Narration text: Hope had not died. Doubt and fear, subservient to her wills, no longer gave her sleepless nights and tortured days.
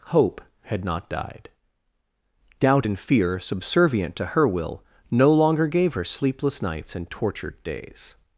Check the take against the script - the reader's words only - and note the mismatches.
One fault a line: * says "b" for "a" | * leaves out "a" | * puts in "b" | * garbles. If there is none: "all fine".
* says "will" for "wills"